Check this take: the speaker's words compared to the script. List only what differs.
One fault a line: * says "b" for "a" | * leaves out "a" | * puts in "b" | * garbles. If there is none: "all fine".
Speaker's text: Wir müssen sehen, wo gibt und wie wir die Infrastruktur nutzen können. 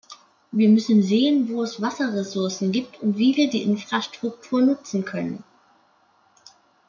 * puts in "es Wasserressourcen"